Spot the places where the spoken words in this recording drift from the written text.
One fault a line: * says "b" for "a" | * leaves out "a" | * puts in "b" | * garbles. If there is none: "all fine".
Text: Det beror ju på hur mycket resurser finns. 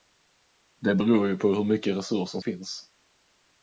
all fine